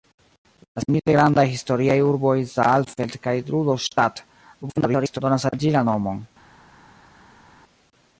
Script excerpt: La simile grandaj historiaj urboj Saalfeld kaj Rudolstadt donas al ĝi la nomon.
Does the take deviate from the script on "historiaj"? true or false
false